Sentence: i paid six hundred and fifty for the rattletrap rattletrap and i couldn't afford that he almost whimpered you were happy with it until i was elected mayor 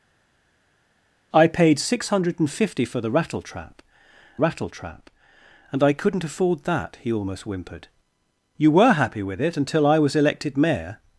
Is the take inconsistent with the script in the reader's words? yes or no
no